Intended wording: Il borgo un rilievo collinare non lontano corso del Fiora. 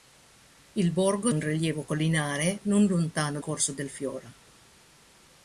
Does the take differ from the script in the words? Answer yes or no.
no